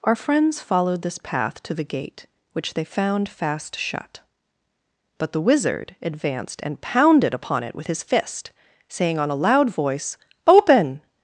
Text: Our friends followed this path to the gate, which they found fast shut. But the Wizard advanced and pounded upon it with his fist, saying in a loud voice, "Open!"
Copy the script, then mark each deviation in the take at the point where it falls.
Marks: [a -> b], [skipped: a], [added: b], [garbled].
Our friends followed this path to the gate, which they found fast shut. But the Wizard advanced and pounded upon it with his fist, saying [in -> on] a loud voice, "Open!"